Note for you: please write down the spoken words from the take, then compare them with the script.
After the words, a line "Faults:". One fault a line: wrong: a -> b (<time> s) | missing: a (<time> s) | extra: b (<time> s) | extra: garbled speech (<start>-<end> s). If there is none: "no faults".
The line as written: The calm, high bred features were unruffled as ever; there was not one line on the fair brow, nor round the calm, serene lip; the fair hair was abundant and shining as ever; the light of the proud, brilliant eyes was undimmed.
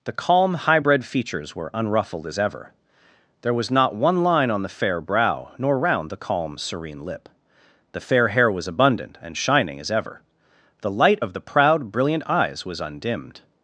The calm, high bred features were unruffled as ever; there was not one line on the fair brow, nor round the calm, serene lip; the fair hair was abundant and shining as ever; the light of the proud, brilliant eyes was undimmed.
Faults:
no faults